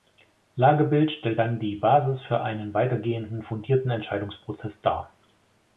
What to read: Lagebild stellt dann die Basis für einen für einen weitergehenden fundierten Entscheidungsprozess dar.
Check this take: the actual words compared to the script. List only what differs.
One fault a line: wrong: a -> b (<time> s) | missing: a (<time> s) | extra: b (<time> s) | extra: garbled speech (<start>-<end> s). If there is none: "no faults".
missing: für einen (2.7 s)